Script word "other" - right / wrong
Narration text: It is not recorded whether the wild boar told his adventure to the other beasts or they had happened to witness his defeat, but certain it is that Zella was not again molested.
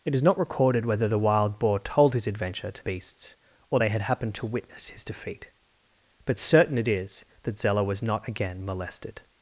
wrong